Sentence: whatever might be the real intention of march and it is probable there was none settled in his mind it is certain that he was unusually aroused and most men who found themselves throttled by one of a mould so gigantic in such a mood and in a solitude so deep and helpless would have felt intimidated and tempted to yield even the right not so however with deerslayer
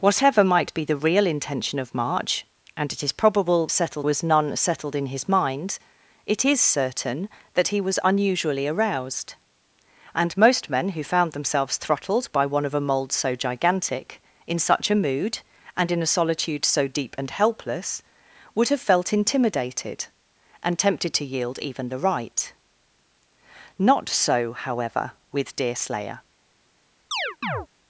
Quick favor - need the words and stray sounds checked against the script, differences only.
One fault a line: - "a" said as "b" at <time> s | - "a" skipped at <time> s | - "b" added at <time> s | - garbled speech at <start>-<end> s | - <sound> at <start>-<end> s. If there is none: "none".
- "there" said as "settled" at 3.7 s
- chirp at 27.1-27.7 s